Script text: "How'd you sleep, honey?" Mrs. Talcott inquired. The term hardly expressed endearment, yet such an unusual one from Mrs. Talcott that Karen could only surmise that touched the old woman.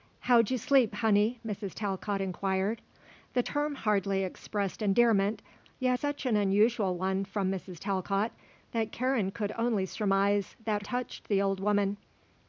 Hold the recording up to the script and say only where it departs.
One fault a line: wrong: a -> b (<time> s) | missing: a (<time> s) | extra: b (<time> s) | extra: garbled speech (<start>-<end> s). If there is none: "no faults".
no faults